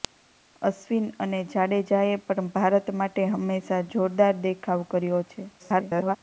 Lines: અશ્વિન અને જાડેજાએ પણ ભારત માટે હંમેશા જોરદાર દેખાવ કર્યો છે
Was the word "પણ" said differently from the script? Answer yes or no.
no